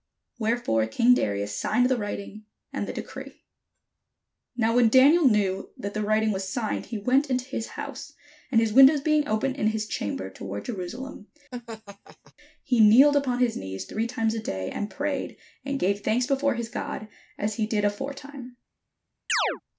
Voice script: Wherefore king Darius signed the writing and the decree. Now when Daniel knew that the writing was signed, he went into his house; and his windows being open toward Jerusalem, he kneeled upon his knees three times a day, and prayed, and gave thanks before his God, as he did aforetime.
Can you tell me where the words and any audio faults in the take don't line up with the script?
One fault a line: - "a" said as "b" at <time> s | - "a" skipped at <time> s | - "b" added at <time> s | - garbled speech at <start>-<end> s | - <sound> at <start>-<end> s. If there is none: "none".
- "in his chamber" added at 9.5 s
- laugh at 11.5-12.3 s
- chirp at 19.3-19.6 s